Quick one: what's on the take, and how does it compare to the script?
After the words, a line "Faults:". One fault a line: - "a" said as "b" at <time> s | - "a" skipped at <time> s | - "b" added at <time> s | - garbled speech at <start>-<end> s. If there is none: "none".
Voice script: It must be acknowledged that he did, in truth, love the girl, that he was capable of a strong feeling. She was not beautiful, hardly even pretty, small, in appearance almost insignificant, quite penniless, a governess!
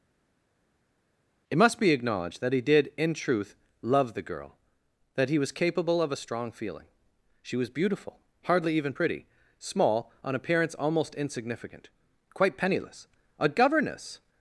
It must be acknowledged that he did, in truth, love the girl, that he was capable of a strong feeling. She was beautiful, hardly even pretty, small, on appearance almost insignificant, quite penniless, a governess!
Faults:
- "not" skipped at 7.7 s
- "in" said as "on" at 10.2 s